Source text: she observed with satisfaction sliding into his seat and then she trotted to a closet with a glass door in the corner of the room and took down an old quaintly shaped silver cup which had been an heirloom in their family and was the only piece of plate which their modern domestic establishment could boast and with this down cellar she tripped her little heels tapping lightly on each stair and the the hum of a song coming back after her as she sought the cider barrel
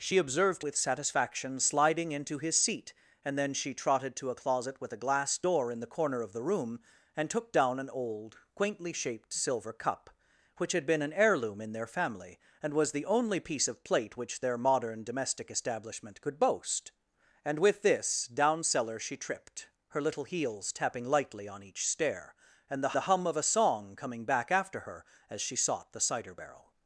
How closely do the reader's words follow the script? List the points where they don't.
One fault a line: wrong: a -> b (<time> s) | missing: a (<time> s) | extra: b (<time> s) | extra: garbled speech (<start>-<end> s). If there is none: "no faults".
no faults